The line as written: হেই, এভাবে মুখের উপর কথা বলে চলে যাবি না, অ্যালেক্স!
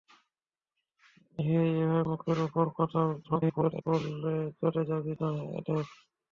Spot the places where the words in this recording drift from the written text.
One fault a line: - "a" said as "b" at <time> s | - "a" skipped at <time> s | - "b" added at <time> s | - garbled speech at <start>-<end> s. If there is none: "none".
- garbled speech at 3.2-3.8 s